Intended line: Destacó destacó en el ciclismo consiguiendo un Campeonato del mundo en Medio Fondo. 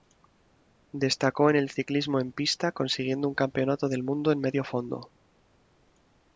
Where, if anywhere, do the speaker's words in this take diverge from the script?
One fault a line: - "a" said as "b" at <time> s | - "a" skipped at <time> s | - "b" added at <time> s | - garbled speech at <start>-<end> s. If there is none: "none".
- "destacó" skipped at 1.5 s
- "en pista" added at 2.2 s